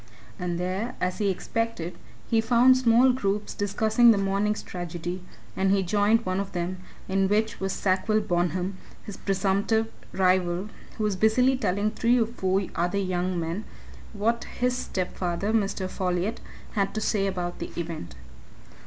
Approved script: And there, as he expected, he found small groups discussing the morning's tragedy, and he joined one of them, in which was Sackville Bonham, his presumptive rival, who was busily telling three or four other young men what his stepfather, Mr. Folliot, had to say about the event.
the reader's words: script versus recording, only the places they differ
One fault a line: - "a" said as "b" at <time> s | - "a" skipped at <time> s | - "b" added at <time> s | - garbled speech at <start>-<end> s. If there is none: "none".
none